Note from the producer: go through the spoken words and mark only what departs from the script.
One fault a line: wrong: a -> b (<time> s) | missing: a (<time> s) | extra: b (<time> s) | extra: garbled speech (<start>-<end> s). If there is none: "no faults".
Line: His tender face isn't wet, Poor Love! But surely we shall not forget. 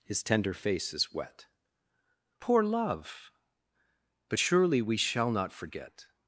wrong: isn't -> is (0.9 s)